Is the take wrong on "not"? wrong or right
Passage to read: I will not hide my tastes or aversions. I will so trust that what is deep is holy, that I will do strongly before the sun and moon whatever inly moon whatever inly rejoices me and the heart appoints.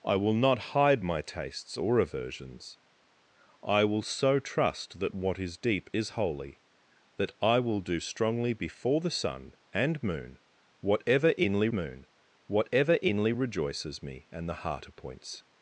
right